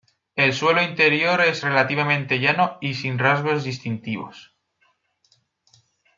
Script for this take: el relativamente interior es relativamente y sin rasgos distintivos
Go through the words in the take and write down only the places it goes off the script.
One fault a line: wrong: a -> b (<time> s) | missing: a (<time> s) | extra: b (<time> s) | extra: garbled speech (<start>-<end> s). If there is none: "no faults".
wrong: relativamente -> suelo (0.5 s)
extra: llano (2.4 s)